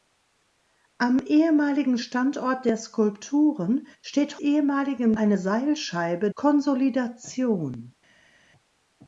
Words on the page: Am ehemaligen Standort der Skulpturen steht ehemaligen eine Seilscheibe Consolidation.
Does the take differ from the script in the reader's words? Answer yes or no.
no